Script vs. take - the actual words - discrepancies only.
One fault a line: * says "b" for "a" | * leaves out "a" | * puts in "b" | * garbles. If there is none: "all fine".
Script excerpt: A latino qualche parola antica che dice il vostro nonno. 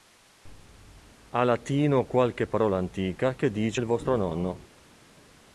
all fine